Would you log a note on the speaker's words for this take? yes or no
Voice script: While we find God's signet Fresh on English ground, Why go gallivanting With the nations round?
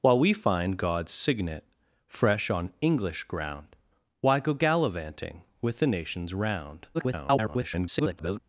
yes